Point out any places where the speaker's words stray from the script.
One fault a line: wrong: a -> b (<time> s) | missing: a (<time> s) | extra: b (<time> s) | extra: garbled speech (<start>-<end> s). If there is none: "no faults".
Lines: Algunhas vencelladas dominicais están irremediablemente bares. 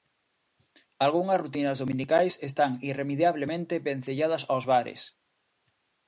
wrong: vencelladas -> rutinas (1.4 s)
extra: vencelladas aos (3.9 s)